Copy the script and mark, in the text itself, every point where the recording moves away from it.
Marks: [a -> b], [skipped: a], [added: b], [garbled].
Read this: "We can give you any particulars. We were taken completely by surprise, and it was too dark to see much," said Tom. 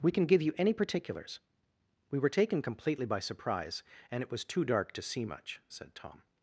"We can give you any particulars. We were taken completely by surprise, and it was too dark to see much," said Tom.